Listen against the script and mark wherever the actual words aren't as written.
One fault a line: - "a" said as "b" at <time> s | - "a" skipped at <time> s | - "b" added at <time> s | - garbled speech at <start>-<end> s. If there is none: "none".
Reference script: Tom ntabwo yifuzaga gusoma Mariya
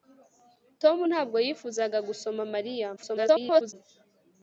- garbled speech at 3.0-3.7 s